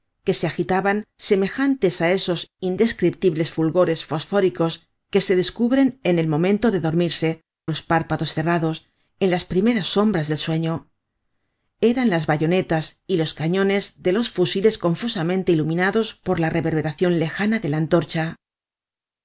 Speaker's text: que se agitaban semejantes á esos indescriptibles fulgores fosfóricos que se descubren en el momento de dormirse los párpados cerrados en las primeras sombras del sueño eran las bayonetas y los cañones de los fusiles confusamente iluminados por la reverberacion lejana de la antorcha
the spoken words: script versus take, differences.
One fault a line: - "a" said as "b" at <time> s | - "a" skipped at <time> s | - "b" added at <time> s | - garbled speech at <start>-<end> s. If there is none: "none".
none